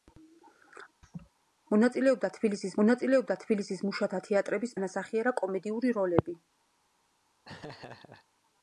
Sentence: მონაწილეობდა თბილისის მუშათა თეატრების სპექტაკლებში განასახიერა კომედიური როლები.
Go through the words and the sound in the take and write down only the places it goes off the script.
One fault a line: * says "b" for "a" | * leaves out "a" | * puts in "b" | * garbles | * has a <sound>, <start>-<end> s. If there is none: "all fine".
* has a laugh, 1.0-1.3 s
* puts in "მონაწილეობდა თბილისის"
* leaves out "სპექტაკლებში"
* has a laugh, 7.4-8.3 s